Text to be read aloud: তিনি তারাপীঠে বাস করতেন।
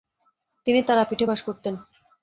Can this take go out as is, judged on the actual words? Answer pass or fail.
pass